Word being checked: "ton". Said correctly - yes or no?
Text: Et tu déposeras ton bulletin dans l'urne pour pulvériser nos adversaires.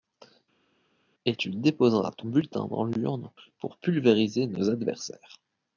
yes